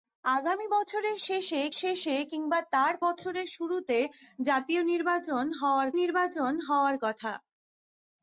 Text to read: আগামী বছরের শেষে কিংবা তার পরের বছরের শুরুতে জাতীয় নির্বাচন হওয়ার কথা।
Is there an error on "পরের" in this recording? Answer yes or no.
yes